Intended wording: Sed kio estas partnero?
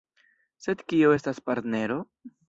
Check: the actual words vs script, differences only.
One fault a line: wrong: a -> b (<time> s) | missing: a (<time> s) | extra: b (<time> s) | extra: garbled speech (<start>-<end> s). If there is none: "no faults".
no faults